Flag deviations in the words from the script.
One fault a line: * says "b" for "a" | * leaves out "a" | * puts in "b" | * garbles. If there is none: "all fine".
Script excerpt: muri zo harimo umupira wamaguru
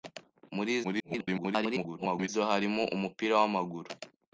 * garbles